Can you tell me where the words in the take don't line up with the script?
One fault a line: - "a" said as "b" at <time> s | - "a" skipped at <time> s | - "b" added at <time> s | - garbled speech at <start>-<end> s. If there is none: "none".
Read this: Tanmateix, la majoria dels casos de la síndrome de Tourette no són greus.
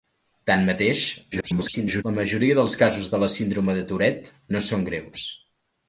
- garbled speech at 1.3-2.0 s